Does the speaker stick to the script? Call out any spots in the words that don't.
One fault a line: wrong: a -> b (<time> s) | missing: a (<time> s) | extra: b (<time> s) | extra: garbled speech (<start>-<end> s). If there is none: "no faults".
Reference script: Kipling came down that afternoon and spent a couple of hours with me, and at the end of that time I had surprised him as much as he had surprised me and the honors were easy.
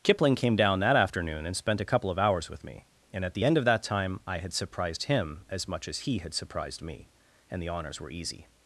no faults